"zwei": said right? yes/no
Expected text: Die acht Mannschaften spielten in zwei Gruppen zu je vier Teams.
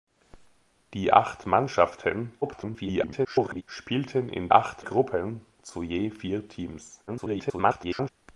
no